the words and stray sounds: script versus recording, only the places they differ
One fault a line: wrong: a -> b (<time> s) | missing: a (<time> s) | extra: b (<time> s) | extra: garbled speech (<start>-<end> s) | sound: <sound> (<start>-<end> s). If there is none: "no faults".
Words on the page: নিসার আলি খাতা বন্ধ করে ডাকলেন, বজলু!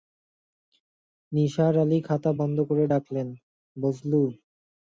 no faults